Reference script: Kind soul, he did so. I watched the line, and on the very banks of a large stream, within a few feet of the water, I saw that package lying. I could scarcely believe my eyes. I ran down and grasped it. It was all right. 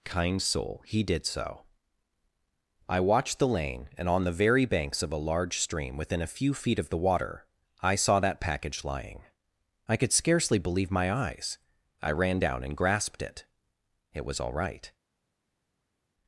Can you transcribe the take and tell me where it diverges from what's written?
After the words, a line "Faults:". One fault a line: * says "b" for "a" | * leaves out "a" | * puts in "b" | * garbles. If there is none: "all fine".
Kind soul, he did so. I watched the lane, and on the very banks of a large stream, within a few feet of the water, I saw that package lying. I could scarcely believe my eyes. I ran down and grasped it. It was all right.
Faults:
* says "lane" for "line"